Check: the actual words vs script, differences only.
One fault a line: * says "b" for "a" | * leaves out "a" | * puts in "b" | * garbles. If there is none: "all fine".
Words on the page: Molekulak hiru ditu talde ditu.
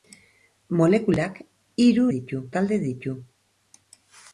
all fine